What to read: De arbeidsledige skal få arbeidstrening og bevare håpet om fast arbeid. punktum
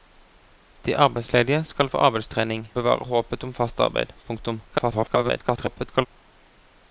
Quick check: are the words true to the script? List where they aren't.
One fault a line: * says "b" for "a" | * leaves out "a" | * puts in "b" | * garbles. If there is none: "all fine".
* leaves out "og"
* garbles